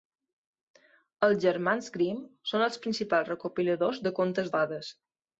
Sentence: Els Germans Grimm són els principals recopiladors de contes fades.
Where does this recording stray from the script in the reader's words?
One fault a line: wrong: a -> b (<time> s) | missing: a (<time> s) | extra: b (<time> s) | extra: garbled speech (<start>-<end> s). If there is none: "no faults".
no faults